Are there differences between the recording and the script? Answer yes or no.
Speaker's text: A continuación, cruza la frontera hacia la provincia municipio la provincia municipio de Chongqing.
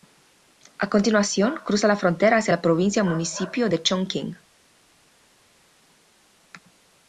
yes